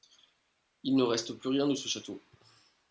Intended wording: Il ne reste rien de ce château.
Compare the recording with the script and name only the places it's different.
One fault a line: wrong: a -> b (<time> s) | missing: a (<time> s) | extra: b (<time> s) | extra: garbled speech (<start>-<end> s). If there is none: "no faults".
extra: plus (1.3 s)